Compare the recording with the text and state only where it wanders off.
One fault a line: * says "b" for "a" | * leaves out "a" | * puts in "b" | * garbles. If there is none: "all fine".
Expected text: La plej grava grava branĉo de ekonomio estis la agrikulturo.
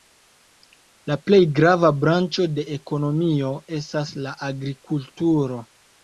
* leaves out "grava"
* says "estas" for "estis"